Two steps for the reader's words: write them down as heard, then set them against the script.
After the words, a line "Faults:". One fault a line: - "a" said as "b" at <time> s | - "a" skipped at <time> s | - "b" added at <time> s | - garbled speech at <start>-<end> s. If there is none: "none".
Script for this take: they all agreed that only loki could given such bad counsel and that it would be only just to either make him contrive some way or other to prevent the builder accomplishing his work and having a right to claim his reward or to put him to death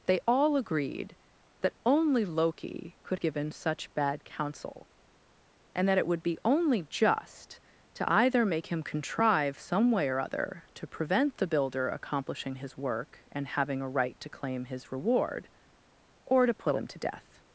they all agreed that only loki could given such bad counsel and that it would be only just to either make him contrive some way or other to prevent the builder accomplishing his work and having a right to claim his reward or to put him to death
Faults:
none